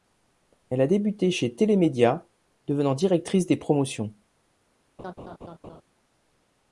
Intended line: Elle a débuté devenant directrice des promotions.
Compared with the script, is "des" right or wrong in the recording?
right